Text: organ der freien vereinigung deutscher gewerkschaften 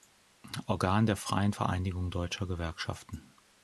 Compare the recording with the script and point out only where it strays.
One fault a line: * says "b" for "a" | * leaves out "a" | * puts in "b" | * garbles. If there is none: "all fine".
all fine